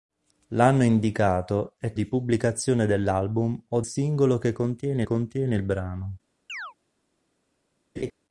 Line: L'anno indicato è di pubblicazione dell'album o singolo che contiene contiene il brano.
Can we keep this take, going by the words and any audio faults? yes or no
no